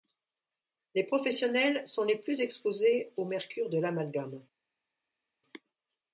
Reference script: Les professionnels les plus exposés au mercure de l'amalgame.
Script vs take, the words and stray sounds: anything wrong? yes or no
yes